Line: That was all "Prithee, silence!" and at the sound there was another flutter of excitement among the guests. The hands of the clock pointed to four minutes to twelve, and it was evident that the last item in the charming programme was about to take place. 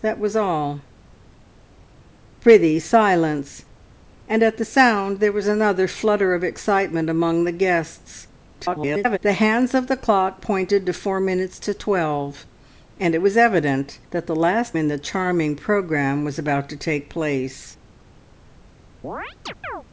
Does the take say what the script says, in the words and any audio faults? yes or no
no